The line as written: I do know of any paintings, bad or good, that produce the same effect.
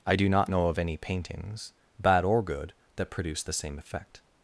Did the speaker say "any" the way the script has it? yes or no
yes